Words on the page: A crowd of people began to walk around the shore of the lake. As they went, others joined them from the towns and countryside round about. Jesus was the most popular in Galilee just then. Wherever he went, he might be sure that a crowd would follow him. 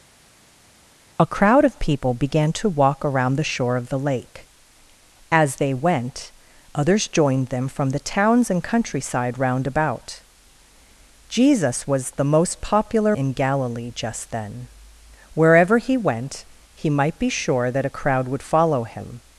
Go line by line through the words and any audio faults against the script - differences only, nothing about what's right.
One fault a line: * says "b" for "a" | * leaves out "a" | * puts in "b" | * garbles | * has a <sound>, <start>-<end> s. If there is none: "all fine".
all fine